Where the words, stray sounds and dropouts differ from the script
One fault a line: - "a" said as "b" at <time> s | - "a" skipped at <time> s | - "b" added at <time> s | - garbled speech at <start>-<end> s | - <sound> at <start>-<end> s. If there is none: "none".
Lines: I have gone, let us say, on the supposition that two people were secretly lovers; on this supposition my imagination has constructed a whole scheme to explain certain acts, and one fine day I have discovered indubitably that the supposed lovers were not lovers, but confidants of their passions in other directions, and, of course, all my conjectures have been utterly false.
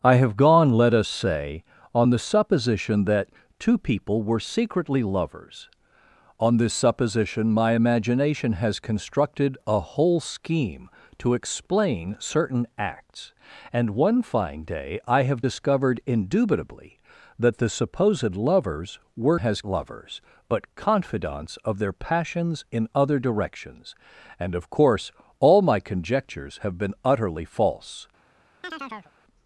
- "not" said as "has" at 19.4 s
- chirp at 28.6-29.1 s